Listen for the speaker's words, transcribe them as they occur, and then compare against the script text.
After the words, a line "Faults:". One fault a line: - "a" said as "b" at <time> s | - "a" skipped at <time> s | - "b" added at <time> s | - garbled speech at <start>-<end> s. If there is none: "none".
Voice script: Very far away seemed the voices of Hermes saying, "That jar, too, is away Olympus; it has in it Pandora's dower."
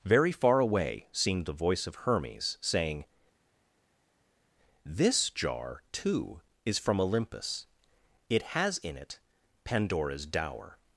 Very far away seemed the voice of Hermes saying, "This jar, too, is from Olympus; it has in it Pandora's dower."
Faults:
- "voices" said as "voice" at 1.5 s
- "That" said as "This" at 4.8 s
- "away" said as "from" at 6.8 s